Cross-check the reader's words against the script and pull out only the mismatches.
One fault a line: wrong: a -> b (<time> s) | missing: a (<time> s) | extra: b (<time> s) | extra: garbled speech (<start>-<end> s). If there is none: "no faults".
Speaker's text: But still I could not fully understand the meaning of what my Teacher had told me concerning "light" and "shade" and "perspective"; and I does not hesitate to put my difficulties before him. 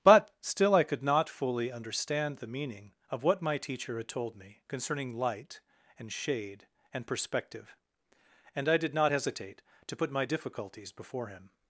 wrong: does -> did (8.8 s)